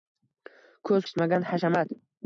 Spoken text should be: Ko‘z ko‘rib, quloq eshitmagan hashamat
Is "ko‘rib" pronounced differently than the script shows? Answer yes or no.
yes